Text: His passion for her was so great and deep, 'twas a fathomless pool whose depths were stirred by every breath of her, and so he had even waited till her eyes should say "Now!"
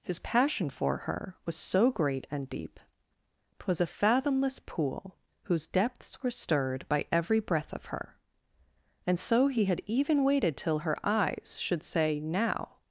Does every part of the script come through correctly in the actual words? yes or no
yes